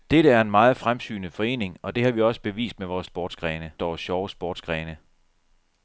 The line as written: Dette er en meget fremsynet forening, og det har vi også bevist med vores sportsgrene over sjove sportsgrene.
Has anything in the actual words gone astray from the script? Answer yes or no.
no